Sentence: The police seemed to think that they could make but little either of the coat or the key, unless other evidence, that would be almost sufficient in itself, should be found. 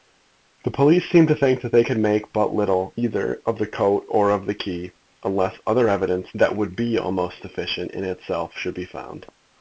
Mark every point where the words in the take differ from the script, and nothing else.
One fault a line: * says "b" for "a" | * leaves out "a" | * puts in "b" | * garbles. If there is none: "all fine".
* puts in "of"